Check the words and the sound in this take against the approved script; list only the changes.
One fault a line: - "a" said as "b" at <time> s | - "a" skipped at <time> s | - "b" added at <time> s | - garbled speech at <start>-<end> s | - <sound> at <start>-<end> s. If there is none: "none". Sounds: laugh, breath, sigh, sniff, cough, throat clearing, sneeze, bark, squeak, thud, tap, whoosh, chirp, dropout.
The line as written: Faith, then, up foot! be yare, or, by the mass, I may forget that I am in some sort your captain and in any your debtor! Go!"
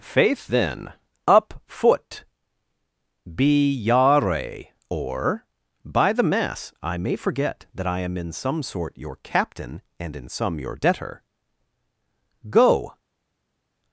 - "any" said as "some" at 10.3 s